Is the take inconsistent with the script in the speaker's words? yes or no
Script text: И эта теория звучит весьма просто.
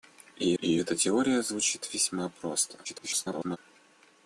yes